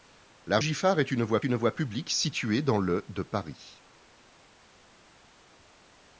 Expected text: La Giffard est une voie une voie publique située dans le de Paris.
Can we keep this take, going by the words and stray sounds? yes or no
yes